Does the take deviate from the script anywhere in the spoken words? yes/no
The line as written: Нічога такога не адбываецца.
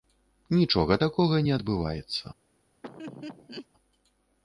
no